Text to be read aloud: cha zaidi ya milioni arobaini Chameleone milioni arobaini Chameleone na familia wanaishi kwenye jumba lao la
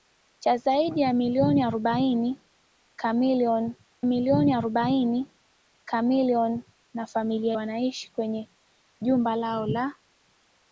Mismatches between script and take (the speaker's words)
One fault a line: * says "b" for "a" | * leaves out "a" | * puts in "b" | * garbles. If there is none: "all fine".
all fine